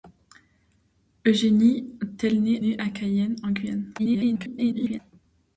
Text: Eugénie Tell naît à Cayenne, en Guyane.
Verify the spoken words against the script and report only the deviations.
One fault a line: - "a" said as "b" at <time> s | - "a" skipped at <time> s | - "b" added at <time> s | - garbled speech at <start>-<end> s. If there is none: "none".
- "naît" added at 2.6 s
- garbled speech at 4.0-5.0 s